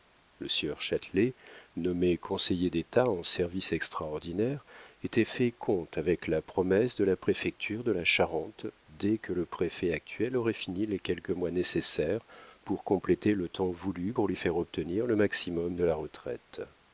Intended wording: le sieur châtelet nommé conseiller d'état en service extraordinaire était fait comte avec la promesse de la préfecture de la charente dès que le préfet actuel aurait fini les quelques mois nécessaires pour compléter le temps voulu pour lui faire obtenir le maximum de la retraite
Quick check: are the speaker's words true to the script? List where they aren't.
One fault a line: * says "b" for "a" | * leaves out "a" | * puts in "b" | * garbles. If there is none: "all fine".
all fine